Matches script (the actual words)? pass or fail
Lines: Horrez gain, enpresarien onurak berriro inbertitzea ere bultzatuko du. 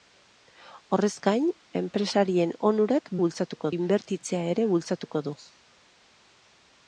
fail